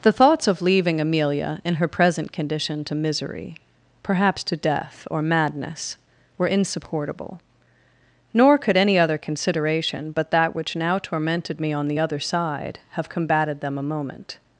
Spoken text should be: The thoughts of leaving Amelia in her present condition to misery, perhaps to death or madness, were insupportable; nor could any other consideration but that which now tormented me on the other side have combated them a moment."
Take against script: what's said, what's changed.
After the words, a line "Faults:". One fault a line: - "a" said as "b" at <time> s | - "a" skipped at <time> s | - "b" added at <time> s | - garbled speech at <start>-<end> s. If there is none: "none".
The thoughts of leaving Amelia in her present condition to misery, perhaps to death or madness, were insupportable; nor could any other consideration but that which now tormented me on the other side have combated them a moment."
Faults:
none